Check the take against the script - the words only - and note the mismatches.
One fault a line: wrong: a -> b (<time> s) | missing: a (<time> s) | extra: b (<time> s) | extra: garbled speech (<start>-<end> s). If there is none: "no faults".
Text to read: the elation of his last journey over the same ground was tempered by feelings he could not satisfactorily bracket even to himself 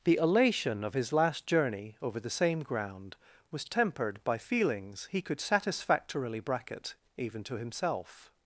missing: not (5.4 s)